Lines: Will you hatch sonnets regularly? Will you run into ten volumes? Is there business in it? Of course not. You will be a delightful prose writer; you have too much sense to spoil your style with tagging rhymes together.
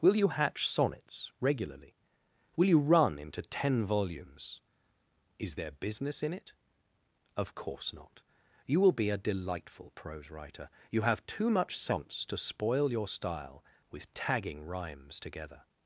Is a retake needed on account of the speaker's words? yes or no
no